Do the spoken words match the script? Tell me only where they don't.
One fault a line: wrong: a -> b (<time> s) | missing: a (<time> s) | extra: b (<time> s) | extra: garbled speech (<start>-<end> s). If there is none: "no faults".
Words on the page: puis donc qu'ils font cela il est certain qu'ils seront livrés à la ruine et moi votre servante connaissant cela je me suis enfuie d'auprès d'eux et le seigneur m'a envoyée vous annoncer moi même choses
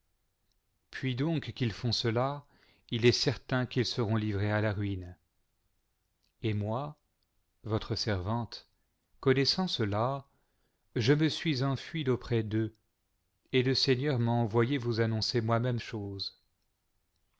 no faults